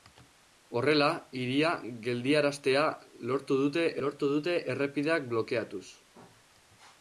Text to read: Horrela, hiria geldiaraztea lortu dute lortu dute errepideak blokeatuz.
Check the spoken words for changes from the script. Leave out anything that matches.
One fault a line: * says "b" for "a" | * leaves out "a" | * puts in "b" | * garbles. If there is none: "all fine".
all fine